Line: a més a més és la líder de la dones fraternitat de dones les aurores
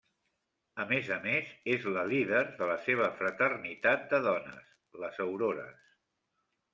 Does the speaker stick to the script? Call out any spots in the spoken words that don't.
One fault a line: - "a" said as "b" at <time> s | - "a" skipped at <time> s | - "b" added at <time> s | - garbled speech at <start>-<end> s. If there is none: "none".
- "dones" said as "seva" at 2.9 s